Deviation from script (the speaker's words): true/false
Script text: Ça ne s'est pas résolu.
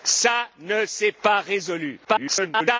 true